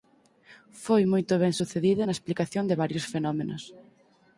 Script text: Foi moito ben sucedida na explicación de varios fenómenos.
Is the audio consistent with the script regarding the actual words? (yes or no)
yes